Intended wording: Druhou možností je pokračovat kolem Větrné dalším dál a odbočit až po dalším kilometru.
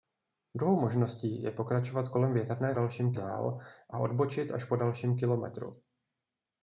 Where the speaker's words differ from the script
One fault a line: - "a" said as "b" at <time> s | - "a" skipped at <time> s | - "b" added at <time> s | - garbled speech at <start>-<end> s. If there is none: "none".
none